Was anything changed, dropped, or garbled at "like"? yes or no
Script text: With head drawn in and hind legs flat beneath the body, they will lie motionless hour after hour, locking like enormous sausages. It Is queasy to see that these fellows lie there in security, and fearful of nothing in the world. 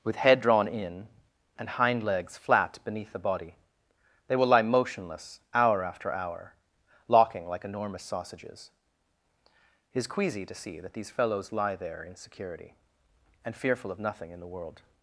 no